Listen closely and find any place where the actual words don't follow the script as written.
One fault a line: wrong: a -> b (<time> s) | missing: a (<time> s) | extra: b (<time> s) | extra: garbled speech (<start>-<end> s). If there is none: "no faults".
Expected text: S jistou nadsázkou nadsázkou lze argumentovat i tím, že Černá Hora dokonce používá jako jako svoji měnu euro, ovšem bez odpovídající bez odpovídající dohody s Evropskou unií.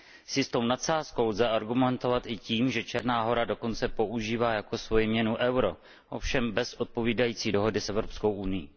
missing: nadsázkou (1.3 s)
missing: jako (4.8 s)
missing: bez odpovídající (7.5 s)